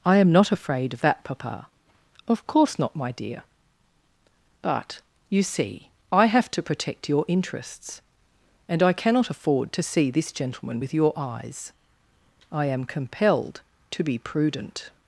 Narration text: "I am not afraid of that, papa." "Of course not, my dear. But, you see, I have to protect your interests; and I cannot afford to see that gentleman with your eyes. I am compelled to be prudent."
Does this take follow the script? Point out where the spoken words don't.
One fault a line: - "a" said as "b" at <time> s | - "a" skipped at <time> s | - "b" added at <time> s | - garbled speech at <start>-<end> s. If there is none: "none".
- "that" said as "this" at 10.1 s